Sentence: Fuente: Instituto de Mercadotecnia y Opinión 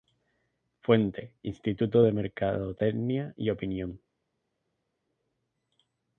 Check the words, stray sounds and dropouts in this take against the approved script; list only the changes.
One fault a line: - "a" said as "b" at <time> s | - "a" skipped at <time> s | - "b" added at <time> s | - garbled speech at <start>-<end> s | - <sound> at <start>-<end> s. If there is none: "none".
none